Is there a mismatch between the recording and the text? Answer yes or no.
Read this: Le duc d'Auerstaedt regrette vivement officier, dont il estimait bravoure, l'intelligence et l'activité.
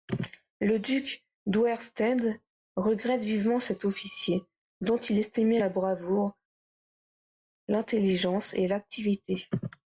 yes